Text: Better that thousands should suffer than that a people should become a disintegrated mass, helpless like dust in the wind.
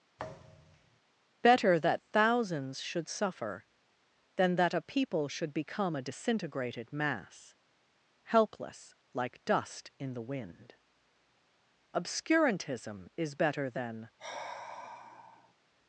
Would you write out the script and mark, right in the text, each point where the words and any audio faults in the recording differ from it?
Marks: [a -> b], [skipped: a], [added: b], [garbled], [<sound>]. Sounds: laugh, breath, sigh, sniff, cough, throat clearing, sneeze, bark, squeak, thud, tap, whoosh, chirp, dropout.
[thud] Better that thousands should suffer than that a people should become a disintegrated mass, helpless like dust in the wind. [added: Obscurantism is better than] [sigh]